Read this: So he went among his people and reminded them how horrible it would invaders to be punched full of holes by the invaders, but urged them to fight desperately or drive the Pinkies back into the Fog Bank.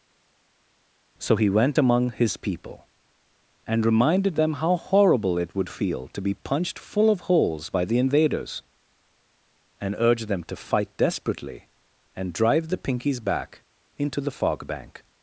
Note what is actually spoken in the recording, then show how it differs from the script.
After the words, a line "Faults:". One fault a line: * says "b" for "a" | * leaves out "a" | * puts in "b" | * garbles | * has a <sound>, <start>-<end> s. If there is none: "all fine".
So he went among his people and reminded them how horrible it would feel to be punched full of holes by the invaders, and urged them to fight desperately and drive the Pinkies back into the Fog Bank.
Faults:
* says "feel" for "invaders"
* says "and" for "but"
* says "and" for "or"